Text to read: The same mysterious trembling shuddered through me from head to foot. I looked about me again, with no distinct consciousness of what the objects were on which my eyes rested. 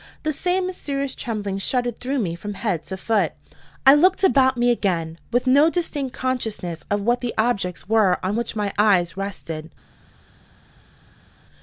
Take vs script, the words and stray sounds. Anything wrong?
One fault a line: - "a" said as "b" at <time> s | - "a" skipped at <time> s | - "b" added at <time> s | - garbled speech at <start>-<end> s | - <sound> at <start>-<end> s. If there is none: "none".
none